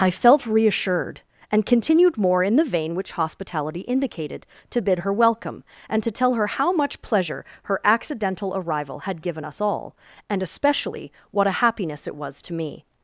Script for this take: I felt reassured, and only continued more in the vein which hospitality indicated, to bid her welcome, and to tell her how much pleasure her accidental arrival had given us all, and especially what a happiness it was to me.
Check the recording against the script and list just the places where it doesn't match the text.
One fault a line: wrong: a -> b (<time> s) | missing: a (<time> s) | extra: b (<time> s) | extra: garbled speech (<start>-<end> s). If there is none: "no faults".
missing: only (1.6 s)